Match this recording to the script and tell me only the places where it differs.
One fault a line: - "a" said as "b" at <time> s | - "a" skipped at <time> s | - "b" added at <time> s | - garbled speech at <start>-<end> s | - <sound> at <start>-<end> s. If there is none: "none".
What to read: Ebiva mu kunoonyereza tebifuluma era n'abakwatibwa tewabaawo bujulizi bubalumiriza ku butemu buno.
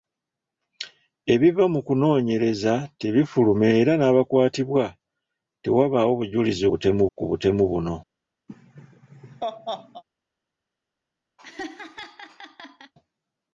- "bubalumiriza" said as "butemu" at 6.7 s
- laugh at 8.5-10.0 s
- laugh at 11.4-12.9 s